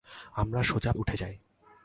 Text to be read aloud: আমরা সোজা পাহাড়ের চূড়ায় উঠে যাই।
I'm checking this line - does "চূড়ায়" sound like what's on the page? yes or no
no